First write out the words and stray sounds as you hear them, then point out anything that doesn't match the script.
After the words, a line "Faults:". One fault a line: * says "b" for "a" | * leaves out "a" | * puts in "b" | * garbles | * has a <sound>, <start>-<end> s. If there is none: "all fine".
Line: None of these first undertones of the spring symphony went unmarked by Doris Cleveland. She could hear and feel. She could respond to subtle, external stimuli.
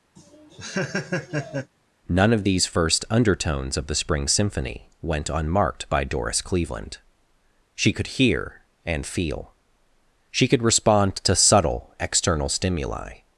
None of these first undertones of the spring symphony went unmarked by Doris Cleveland. She could hear and feel. She could respond to subtle, external stimuli.
Faults:
* has a laugh, 0.2-1.7 s